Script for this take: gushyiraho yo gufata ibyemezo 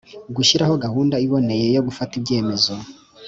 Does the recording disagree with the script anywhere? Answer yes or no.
yes